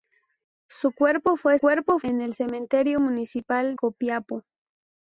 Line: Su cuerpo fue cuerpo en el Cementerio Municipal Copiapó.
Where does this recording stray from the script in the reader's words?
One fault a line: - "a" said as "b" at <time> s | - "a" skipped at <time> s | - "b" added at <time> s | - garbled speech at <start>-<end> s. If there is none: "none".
none